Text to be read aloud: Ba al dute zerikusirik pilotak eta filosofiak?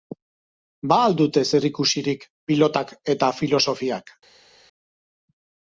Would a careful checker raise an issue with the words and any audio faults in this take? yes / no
no